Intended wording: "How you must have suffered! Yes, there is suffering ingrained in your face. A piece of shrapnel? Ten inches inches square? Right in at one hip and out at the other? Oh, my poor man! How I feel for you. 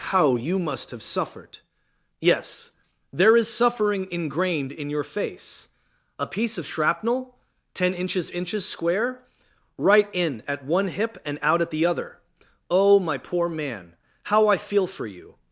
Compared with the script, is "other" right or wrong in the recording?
right